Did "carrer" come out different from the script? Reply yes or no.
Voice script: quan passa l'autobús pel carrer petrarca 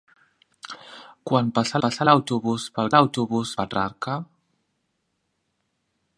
yes